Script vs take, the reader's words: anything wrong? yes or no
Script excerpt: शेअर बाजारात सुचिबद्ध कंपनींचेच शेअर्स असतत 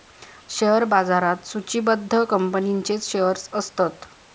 no